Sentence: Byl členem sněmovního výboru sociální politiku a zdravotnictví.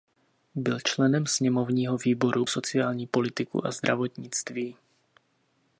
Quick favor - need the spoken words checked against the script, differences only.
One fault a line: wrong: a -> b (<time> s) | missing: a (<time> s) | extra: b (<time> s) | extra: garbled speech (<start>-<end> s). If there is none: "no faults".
no faults